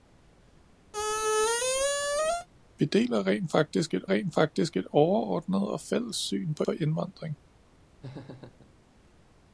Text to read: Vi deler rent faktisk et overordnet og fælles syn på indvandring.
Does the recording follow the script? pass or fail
fail